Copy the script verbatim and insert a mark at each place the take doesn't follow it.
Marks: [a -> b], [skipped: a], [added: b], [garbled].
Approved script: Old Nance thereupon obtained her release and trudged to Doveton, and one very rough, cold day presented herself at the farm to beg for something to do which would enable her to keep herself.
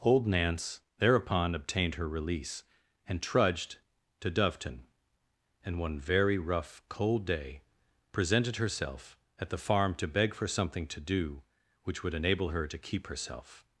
Old Nance thereupon obtained her release and trudged to Doveton, and one very rough, cold day presented herself at the farm to beg for something to do which would enable her to keep herself.